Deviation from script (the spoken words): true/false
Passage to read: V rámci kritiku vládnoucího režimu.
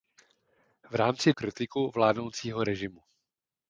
false